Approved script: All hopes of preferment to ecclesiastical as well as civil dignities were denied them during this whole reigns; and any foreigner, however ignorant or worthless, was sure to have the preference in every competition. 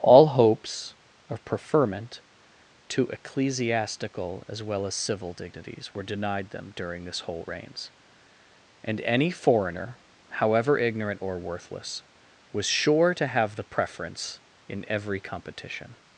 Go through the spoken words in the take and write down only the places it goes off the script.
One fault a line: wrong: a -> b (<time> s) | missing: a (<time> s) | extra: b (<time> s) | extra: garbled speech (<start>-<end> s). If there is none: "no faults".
no faults